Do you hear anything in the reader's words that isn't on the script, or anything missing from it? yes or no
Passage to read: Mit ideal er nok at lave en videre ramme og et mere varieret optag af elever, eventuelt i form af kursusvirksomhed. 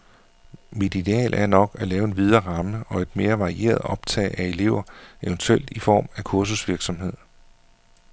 no